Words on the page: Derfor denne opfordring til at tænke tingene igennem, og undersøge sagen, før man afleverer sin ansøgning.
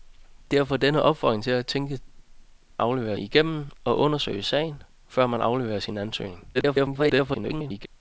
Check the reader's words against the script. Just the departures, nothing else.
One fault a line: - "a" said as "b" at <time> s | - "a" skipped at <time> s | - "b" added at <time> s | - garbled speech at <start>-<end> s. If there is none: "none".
- "tingene" said as "afleverer" at 2.8 s
- garbled speech at 6.5-7.9 s